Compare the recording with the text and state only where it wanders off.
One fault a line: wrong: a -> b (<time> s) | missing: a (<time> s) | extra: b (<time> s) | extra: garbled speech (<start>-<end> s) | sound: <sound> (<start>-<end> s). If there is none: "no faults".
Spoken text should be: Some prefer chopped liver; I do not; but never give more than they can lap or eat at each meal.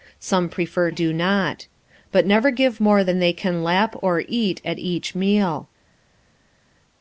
missing: chopped liver I (0.9 s)